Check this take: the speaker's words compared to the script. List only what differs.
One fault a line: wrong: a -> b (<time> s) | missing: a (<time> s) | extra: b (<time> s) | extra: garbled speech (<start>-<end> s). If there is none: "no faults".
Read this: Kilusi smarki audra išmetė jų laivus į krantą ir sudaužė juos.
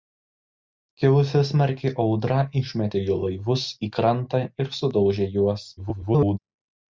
extra: garbled speech (5.8-6.4 s)